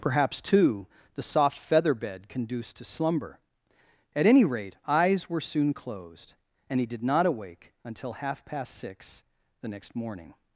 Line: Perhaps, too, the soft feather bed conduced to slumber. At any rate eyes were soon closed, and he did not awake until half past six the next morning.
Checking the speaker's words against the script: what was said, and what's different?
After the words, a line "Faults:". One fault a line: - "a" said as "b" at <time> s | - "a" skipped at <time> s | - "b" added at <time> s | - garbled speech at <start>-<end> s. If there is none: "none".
Perhaps, too, the soft feather bed conduced to slumber. At any rate eyes were soon closed, and he did not awake until half past six the next morning.
Faults:
none